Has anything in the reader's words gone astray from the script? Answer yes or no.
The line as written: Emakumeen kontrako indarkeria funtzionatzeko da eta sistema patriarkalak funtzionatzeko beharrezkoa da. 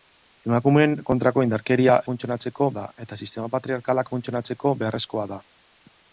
no